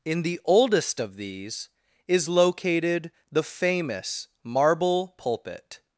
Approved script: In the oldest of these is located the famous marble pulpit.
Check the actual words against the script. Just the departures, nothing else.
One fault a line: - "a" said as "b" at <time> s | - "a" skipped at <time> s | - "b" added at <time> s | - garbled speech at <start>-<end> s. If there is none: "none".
none